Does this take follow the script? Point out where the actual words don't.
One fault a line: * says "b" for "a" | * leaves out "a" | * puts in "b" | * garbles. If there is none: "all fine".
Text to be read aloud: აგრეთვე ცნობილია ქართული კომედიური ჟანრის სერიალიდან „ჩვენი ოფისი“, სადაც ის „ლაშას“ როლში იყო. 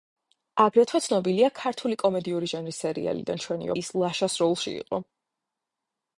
* leaves out "ოფისი სადაც"